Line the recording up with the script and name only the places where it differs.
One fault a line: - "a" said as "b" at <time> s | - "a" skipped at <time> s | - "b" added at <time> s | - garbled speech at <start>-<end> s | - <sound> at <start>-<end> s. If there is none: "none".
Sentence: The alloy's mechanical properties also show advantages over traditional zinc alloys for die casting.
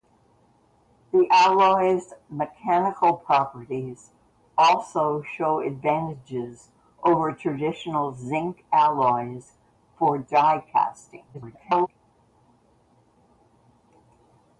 - garbled speech at 11.3-11.9 s